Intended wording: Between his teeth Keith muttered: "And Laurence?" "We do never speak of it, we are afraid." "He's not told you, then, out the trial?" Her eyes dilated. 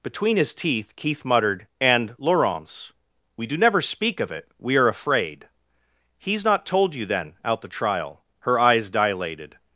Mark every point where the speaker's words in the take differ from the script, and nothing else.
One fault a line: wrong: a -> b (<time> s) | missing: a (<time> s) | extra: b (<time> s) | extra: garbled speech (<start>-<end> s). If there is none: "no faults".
no faults